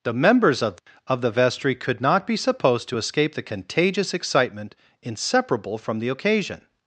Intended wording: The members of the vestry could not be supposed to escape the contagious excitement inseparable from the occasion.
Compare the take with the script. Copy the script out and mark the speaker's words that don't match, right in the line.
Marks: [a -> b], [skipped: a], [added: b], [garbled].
The members of [added: of] the vestry could not be supposed to escape the contagious excitement inseparable from the occasion.